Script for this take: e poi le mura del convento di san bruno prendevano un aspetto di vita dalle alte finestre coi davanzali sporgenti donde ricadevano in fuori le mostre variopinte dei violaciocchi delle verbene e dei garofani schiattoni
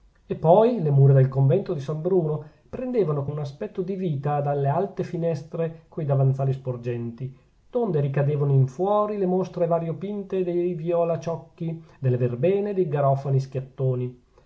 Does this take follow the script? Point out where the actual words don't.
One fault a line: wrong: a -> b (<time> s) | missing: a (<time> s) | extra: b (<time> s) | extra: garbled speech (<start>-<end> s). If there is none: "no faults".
no faults